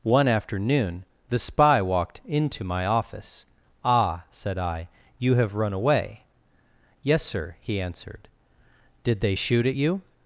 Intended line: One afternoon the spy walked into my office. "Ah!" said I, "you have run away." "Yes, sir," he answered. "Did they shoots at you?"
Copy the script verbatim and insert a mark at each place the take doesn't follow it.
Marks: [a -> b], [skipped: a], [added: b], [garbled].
One afternoon the spy walked into my office. "Ah!" said I, "you have run away." "Yes, sir," he answered. "Did they [shoots -> shoot] at you?"